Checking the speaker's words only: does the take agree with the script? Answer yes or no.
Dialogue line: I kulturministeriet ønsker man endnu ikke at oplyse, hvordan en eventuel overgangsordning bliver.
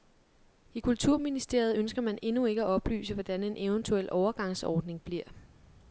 yes